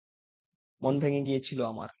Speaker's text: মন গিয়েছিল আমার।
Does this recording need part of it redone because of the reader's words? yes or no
yes